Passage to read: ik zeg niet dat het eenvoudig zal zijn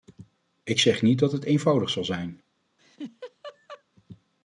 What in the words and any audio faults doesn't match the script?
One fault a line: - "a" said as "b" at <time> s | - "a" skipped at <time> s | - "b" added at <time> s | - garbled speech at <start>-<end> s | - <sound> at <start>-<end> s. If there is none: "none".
- laugh at 2.8-3.8 s